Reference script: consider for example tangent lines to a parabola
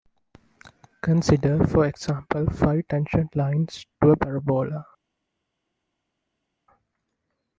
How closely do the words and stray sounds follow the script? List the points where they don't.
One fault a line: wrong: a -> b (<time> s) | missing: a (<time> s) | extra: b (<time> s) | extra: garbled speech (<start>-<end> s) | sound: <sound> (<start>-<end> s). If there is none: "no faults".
extra: five (2.5 s)